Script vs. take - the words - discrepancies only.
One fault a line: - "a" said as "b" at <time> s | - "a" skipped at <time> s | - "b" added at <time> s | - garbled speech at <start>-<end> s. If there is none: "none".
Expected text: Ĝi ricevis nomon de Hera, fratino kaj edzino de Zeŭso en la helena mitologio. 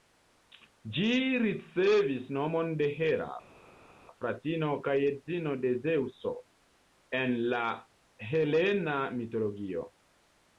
none